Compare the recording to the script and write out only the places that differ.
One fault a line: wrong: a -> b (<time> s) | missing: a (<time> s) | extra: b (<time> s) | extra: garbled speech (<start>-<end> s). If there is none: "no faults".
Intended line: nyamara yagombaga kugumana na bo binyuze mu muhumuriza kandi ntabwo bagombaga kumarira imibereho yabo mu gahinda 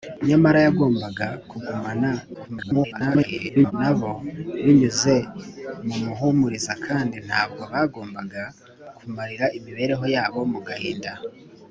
extra: garbled speech (2.3-3.7 s)